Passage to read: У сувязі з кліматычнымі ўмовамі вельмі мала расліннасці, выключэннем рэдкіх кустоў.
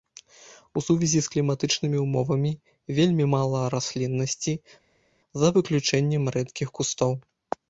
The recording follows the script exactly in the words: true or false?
false